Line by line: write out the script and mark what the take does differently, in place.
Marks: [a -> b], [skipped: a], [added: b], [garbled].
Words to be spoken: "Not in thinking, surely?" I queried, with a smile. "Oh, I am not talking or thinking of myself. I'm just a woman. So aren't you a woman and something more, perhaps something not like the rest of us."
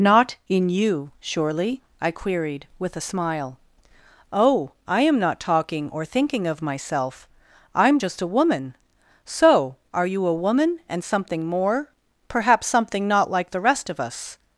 "Not in [thinking, -> you] surely?" I queried, with a smile. "Oh, I am not talking or thinking of myself. I'm just a woman. So [aren't -> are] you a woman and something more, perhaps something not like the rest of us."